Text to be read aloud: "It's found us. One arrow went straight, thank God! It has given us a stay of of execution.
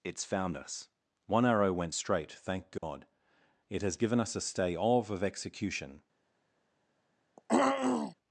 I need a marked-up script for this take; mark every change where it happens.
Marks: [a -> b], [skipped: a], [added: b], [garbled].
"It's found us. One arrow went straight, thank God! It has given us a stay of of execution.